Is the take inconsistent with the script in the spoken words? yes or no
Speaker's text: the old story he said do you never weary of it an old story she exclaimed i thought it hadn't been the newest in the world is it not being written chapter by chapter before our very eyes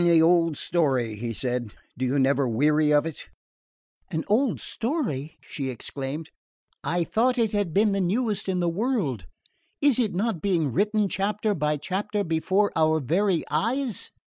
yes